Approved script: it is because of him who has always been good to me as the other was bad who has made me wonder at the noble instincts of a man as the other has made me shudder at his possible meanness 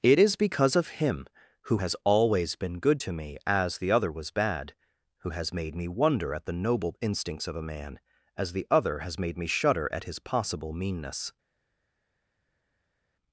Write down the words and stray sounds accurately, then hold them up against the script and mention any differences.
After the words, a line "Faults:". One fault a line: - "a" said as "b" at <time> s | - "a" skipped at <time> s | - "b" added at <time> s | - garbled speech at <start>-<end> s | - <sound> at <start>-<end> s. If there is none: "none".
it is because of him who has always been good to me as the other was bad who has made me wonder at the noble instincts of a man as the other has made me shudder at his possible meanness
Faults:
none